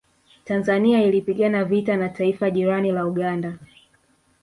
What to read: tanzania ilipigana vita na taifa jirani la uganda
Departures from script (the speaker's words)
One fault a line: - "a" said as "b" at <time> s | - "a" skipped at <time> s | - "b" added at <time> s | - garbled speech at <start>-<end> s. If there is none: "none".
none